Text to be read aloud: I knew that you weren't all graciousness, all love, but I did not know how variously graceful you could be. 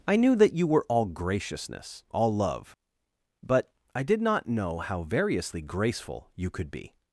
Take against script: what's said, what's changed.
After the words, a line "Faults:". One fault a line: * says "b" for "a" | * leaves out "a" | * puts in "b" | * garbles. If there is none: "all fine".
I knew that you were all graciousness, all love, but I did not know how variously graceful you could be.
Faults:
* says "were" for "weren't"